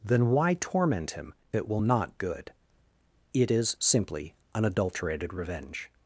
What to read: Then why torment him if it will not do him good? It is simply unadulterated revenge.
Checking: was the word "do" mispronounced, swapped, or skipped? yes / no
yes